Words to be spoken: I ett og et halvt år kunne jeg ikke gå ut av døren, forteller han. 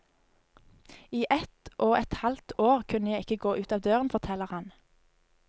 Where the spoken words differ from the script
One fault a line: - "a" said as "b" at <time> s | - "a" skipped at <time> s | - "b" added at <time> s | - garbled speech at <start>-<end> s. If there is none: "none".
none